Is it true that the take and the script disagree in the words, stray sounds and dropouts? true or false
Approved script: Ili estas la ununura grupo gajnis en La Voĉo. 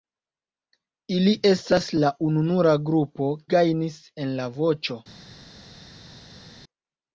false